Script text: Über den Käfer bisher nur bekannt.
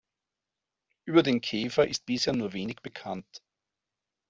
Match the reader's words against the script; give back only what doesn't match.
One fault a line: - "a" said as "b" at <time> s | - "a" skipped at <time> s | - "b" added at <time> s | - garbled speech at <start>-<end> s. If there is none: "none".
- "ist" added at 1.9 s
- "wenig" added at 2.5 s